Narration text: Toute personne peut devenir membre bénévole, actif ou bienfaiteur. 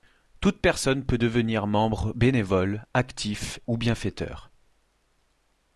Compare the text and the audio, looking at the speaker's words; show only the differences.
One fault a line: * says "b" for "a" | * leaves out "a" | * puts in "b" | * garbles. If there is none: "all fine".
all fine